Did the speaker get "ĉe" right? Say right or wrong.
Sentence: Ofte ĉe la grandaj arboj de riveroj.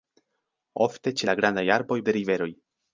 right